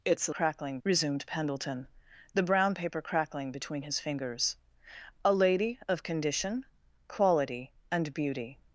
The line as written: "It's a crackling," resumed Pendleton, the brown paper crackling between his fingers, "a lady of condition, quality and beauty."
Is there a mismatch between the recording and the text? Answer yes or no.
no